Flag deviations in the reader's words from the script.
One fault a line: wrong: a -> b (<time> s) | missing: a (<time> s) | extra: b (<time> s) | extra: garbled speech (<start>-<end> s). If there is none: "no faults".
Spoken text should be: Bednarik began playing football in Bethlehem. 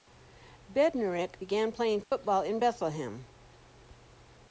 no faults